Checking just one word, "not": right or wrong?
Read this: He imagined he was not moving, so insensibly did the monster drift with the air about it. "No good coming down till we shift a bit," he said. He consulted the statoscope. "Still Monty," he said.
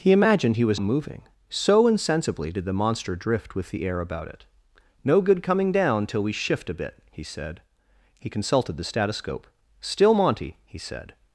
wrong